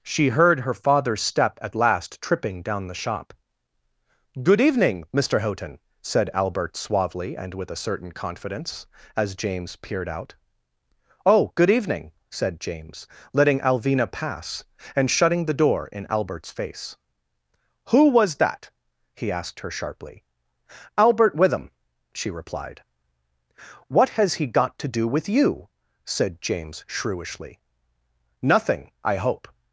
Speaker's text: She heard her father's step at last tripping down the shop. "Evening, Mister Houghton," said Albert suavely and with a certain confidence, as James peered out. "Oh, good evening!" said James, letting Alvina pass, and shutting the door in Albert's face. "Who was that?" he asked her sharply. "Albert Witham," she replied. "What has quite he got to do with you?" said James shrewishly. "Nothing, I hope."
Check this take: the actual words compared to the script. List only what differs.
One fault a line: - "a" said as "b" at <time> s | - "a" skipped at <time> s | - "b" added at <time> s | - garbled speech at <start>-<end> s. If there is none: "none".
- "Good" added at 4.4 s
- "quite" skipped at 24.3 s